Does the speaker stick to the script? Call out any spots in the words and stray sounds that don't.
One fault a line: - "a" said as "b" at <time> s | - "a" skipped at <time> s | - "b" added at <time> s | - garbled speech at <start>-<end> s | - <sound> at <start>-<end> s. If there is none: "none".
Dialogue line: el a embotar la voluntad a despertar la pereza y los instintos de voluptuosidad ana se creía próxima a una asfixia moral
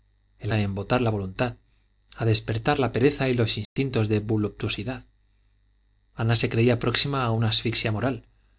- dropout at 3.6-3.8 s